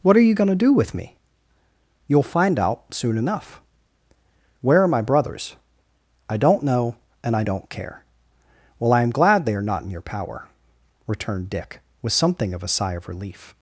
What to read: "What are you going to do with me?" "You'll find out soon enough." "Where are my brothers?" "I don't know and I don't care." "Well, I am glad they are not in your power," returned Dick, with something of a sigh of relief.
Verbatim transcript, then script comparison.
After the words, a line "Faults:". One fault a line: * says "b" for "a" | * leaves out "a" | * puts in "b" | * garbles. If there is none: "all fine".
"What are you going to do with me?" "You'll find out soon enough." "Where are my brothers?" "I don't know and I don't care." "Well, I am glad they are not in your power," returned Dick, with something of a sigh of relief.
Faults:
all fine